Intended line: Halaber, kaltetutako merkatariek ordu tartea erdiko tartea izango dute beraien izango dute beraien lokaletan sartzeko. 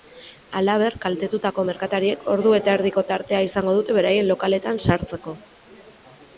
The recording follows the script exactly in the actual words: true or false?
false